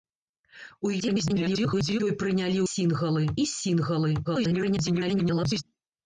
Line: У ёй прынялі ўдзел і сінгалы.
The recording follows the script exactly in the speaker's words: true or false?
false